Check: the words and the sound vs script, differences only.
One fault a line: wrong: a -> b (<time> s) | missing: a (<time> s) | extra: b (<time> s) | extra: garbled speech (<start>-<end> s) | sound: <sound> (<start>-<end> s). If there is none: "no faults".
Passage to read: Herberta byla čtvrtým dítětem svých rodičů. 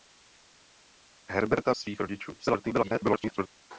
missing: byla čtvrtým dítětem (1.7 s)
extra: garbled speech (2.4-3.5 s)